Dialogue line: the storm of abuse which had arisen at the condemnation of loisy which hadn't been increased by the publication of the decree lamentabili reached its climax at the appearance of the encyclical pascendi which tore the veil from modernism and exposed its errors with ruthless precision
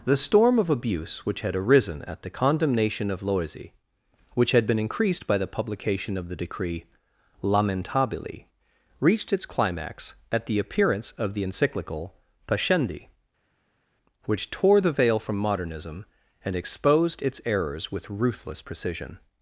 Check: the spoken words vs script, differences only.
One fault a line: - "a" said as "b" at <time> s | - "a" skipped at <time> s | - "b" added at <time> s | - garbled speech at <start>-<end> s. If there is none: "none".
- "hadn't" said as "had" at 4.5 s